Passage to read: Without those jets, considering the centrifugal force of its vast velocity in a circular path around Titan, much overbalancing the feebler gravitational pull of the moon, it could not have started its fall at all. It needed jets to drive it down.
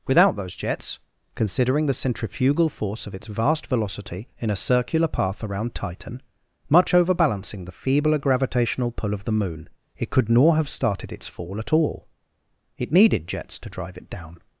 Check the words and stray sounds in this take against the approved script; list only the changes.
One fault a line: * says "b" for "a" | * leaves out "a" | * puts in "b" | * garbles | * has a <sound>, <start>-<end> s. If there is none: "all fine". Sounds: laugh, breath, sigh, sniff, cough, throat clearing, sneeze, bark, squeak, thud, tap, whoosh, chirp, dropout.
* says "nor" for "not"